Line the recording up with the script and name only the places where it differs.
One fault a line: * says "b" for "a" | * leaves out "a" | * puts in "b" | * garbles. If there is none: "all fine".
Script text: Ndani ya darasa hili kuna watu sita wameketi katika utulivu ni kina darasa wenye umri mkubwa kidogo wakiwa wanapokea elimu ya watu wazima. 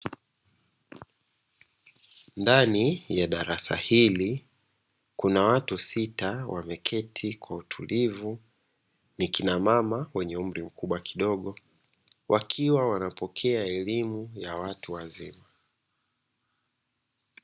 * says "kwa" for "katika"
* says "mama" for "darasa"